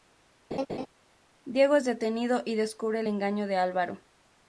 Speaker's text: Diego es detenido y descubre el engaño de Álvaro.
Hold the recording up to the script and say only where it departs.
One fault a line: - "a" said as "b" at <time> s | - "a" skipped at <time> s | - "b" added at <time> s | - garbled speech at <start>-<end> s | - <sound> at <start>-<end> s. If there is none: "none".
- laugh at 0.5-0.9 s